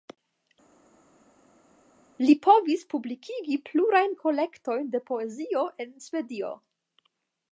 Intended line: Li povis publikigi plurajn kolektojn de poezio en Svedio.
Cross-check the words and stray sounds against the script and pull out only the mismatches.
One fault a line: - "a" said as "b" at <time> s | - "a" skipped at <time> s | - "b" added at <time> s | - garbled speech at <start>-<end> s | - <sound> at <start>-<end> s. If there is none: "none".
none